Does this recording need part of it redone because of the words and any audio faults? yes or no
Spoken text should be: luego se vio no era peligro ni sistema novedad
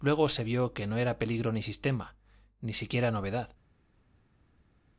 yes